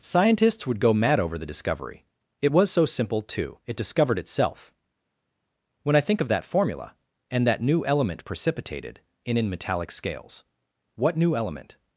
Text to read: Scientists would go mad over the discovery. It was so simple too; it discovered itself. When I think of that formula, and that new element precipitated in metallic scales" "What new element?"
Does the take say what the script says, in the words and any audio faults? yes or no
no